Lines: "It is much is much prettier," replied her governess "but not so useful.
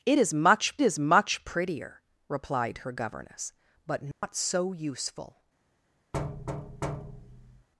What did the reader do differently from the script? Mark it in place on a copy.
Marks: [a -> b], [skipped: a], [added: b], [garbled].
"It is much is much prettier," replied her governess "but not so useful.